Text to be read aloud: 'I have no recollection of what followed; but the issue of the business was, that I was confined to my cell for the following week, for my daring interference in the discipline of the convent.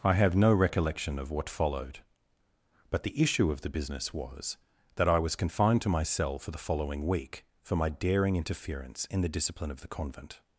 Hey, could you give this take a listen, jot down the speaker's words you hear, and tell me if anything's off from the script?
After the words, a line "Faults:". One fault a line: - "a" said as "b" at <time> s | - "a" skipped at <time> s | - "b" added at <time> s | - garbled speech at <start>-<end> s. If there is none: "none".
'I have no recollection of what followed; but the issue of the business was, that I was confined to my cell for the following week, for my daring interference in the discipline of the convent.
Faults:
none